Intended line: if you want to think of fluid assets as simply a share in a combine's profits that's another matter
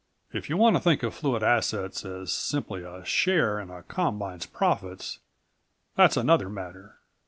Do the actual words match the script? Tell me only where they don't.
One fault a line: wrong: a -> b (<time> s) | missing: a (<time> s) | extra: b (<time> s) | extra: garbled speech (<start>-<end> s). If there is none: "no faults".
no faults